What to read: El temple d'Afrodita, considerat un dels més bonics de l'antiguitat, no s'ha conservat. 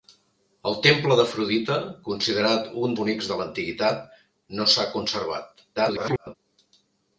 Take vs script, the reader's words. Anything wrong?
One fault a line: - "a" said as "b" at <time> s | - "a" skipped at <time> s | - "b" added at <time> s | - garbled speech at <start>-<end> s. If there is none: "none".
- "dels més" skipped at 3.0 s
- garbled speech at 5.8-6.4 s